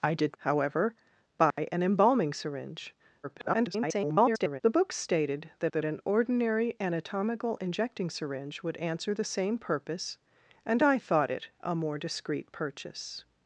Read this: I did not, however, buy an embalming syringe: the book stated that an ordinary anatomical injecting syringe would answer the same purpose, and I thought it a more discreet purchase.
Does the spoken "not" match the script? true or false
false